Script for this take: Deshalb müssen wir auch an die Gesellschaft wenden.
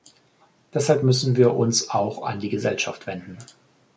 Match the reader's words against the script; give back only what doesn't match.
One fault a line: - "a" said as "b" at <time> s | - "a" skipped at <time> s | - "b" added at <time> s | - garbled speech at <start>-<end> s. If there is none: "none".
- "uns" added at 1.6 s